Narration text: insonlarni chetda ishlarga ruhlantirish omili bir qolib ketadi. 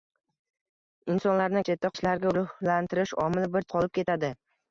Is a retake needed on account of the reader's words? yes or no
no